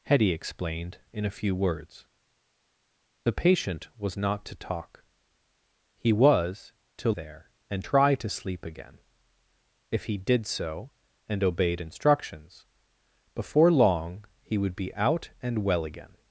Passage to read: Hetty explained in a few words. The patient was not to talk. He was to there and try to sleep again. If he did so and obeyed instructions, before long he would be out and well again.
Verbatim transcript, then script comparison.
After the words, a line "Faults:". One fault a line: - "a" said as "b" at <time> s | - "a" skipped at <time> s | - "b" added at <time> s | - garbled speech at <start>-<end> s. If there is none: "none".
Hetty explained in a few words. The patient was not to talk. He was to there and try to sleep again. If he did so and obeyed instructions, before long he would be out and well again.
Faults:
none